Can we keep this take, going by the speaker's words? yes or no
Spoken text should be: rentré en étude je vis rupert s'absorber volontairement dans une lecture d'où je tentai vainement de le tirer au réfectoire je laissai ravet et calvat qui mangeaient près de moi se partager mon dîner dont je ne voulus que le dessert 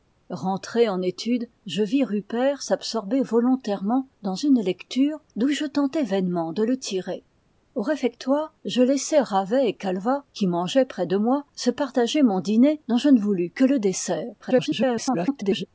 no